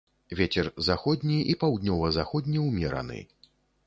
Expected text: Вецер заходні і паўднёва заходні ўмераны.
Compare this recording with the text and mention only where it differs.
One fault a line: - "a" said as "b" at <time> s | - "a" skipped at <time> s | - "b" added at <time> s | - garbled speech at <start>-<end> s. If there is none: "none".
none